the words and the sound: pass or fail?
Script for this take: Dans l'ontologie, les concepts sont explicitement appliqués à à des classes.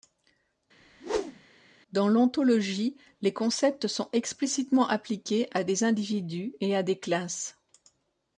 fail